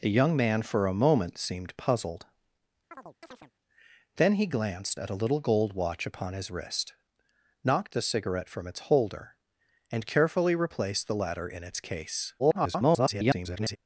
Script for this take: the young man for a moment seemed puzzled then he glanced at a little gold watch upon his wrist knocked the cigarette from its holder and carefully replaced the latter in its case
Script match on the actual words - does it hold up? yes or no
no